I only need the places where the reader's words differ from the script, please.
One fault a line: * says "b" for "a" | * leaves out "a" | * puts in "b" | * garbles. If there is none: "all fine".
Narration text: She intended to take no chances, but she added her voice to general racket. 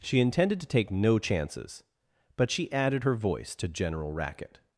all fine